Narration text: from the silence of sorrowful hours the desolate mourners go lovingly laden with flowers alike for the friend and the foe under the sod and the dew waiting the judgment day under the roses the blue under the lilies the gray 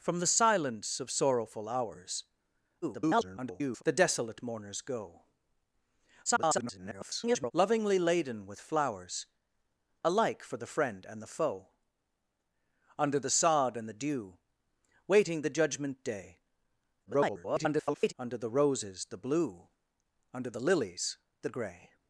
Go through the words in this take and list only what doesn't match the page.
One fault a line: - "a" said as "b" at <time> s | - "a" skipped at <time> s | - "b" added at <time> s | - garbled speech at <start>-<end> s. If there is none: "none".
- garbled speech at 2.8-3.8 s
- garbled speech at 6.2-7.5 s
- garbled speech at 17.1-18.1 s